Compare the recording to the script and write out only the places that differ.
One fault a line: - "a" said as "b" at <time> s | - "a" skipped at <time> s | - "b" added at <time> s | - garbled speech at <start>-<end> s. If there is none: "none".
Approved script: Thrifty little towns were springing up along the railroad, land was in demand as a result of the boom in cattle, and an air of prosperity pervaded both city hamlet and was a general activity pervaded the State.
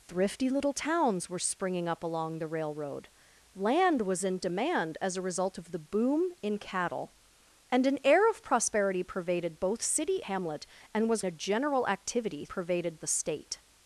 none